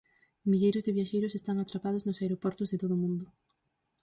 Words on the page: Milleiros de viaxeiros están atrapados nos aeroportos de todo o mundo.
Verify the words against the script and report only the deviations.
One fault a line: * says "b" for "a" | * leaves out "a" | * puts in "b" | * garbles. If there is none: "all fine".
all fine